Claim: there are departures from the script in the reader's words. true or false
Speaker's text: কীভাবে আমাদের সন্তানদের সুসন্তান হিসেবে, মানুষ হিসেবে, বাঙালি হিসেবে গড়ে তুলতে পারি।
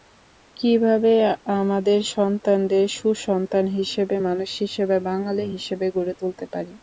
false